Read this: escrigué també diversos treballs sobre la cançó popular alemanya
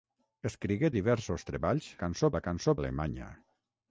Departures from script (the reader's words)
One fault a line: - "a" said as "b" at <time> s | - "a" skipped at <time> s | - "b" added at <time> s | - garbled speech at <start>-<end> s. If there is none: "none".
- "també" skipped at 0.9 s
- "sobre" said as "cançó" at 2.0 s
- "popular" skipped at 2.8 s